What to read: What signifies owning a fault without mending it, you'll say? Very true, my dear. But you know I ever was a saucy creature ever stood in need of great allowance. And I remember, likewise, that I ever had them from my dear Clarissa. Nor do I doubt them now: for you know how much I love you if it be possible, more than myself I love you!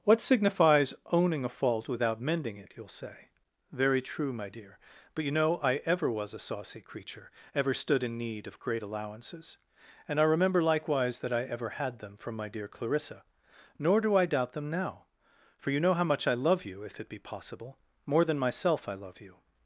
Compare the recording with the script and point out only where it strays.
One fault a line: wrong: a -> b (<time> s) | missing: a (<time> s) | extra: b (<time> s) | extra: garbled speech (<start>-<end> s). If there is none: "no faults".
wrong: allowance -> allowances (8.8 s)